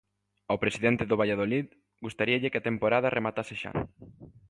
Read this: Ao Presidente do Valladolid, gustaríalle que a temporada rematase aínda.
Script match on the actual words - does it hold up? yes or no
no